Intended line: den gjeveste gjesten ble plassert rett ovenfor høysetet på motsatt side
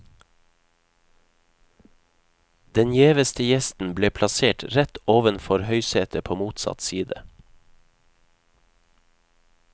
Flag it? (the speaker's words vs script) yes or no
no